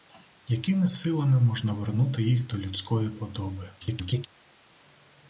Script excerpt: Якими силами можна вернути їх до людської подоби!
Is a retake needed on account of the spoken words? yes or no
yes